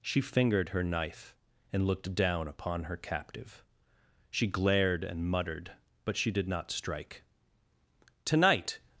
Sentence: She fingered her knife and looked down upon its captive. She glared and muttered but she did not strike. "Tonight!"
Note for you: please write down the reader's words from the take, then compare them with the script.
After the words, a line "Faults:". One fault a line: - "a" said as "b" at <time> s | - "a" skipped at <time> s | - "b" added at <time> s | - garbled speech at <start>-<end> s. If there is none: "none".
She fingered her knife and looked down upon her captive. She glared and muttered but she did not strike. "Tonight!"
Faults:
- "its" said as "her" at 2.9 s